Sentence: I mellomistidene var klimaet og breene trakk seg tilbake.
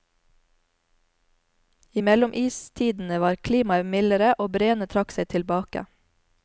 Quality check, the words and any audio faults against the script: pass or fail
fail